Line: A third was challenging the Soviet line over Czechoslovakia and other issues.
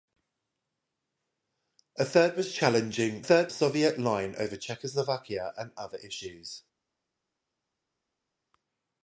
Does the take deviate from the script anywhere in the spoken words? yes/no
yes